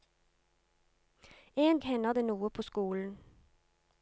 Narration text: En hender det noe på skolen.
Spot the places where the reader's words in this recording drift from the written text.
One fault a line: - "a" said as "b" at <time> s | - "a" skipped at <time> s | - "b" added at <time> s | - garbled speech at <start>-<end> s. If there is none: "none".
none